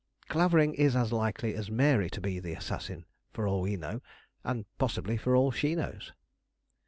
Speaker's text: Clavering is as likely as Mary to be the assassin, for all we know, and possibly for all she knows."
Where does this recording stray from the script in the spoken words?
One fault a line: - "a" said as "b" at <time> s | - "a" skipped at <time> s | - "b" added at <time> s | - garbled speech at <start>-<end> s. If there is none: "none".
none